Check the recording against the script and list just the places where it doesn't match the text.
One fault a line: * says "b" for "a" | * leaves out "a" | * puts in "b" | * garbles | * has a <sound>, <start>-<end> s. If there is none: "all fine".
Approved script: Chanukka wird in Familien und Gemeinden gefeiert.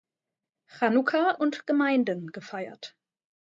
* leaves out "wird in Familien"